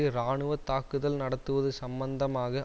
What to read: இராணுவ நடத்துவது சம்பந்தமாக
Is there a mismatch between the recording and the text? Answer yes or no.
yes